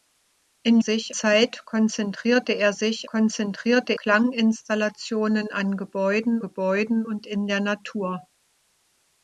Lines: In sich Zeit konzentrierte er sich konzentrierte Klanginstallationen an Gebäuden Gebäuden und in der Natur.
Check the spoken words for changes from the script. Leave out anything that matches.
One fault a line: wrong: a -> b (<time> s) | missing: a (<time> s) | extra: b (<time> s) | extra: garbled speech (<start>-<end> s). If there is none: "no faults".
no faults